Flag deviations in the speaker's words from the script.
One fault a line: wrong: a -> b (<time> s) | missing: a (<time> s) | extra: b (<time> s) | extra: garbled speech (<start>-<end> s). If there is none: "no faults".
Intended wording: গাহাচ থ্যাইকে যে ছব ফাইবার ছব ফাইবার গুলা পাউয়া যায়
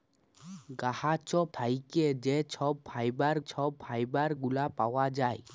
no faults